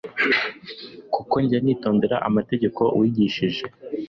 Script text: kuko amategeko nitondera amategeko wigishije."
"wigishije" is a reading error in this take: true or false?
false